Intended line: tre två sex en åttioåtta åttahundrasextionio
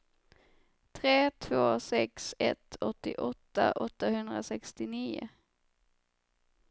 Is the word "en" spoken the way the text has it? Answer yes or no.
no